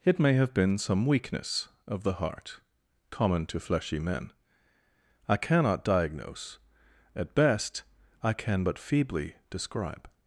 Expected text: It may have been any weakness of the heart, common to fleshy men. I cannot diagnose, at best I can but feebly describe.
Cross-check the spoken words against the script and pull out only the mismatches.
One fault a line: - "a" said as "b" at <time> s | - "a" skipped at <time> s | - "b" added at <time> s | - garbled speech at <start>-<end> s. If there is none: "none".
- "any" said as "some" at 0.8 s